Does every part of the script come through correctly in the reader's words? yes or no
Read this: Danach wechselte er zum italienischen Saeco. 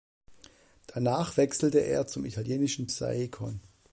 yes